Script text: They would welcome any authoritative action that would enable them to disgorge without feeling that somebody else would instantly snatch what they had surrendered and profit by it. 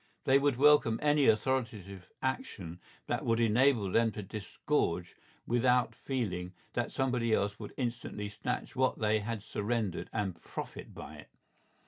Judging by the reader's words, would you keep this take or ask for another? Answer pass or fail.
pass